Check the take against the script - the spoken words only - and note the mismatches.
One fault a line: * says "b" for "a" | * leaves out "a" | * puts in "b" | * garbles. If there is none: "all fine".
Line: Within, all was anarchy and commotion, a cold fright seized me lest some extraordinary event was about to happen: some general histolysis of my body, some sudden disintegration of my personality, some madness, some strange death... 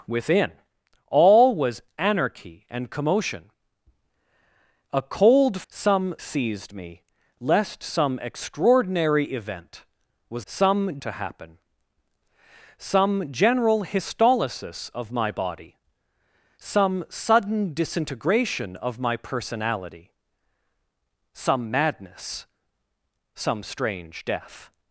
* says "some" for "fright"
* says "some" for "about"